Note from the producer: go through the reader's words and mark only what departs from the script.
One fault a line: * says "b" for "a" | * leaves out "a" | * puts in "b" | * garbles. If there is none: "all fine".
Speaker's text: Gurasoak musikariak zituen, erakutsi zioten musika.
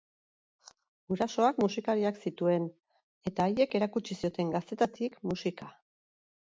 * puts in "eta haiek"
* puts in "gaztetatik"